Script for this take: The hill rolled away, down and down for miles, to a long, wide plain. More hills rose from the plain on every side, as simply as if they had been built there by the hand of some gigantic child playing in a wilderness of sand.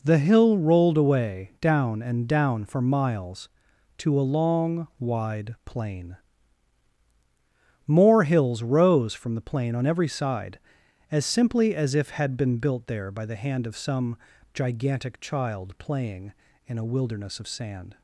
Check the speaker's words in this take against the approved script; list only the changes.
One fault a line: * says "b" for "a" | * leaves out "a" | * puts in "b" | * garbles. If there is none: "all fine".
* leaves out "they"